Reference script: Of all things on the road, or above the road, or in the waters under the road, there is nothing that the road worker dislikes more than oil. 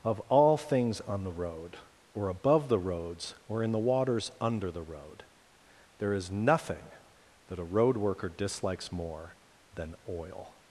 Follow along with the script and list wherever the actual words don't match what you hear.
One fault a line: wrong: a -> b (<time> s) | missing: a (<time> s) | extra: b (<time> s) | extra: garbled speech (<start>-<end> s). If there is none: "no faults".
wrong: road -> roads (2.8 s)
wrong: the -> a (7.6 s)